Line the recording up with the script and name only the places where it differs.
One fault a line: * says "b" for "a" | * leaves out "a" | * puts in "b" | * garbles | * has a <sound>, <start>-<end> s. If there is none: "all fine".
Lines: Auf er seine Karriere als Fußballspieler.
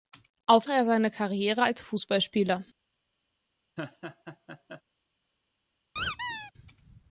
* has a laugh, 3.8-4.8 s
* has a squeak, 6.0-6.5 s